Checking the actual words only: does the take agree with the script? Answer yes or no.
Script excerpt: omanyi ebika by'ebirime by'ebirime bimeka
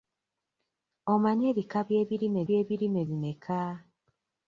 yes